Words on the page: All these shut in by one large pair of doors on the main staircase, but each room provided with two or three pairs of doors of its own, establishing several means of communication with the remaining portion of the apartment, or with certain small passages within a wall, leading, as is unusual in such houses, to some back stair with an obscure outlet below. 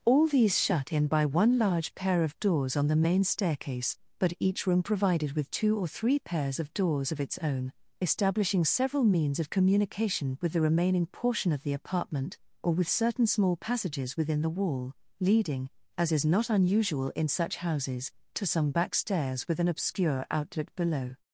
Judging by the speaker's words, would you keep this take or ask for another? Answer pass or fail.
fail